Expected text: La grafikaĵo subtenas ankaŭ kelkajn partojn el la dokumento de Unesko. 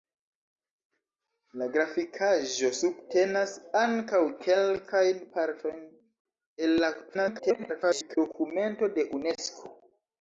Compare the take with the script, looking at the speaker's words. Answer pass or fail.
fail